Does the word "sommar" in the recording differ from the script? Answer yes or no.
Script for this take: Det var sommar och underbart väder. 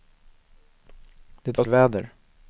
yes